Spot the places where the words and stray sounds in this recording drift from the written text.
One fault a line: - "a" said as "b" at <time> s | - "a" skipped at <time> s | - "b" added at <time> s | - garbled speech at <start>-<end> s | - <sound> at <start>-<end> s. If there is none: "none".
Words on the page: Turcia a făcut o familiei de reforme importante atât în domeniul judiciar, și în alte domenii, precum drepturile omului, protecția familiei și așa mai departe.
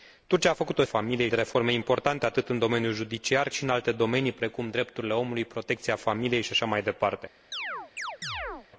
- chirp at 7.5-8.7 s